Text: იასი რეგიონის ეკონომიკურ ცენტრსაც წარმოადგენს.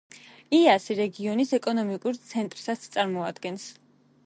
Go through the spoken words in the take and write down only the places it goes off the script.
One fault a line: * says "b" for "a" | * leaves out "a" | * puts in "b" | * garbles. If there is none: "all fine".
all fine